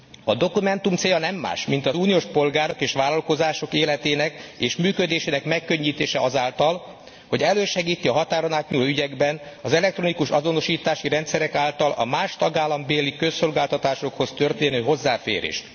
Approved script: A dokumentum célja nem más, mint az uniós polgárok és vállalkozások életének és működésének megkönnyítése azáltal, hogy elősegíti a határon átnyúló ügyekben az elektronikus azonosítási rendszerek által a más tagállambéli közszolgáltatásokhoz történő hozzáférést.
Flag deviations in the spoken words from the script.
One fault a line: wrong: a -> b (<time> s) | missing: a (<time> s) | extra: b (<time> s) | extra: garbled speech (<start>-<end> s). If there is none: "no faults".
no faults